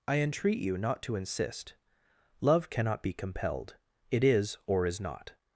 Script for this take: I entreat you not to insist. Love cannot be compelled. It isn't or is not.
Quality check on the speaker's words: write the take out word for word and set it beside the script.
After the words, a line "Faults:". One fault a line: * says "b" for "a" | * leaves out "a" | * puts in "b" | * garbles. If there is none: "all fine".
I entreat you not to insist. Love cannot be compelled. It is or is not.
Faults:
* says "is" for "isn't"